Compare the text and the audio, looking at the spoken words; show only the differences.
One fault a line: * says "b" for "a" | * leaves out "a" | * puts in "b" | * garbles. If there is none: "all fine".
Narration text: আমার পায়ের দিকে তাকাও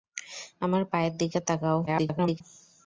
* garbles